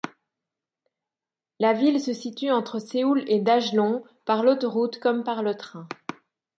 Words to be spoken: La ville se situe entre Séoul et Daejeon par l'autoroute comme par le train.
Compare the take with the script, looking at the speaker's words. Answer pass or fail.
pass